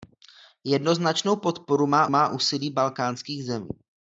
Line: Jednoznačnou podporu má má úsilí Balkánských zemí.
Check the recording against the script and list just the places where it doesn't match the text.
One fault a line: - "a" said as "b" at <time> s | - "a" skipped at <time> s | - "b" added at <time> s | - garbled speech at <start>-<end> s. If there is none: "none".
none